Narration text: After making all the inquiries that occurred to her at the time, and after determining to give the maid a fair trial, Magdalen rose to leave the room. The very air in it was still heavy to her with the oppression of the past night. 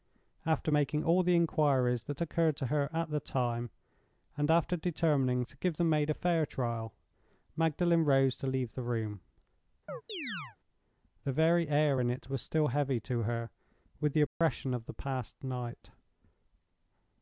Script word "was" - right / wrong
right